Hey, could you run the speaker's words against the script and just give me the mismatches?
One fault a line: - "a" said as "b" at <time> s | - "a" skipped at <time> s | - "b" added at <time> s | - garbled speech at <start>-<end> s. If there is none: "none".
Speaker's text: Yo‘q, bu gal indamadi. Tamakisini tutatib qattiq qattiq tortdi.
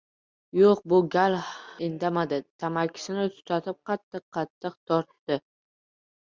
none